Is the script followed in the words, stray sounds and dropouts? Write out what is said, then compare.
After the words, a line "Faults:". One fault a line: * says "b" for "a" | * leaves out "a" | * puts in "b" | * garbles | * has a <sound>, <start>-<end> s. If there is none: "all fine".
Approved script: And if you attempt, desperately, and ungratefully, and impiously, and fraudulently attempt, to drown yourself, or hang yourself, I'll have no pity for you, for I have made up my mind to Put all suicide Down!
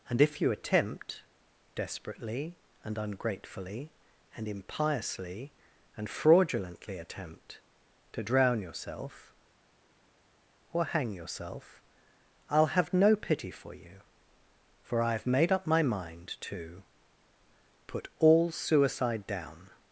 And if you attempt, desperately, and ungratefully, and impiously, and fraudulently attempt, to drown yourself, or hang yourself, I'll have no pity for you, for I have made up my mind to Put all suicide Down!
Faults:
all fine